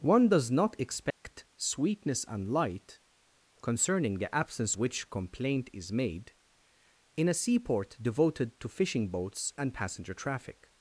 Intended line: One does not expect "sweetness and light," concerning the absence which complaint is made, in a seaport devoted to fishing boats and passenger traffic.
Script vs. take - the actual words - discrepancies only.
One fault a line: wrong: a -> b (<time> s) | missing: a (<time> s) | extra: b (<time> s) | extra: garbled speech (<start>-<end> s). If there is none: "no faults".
no faults